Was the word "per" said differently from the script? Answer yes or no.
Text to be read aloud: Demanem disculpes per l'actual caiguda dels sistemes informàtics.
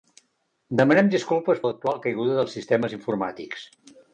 yes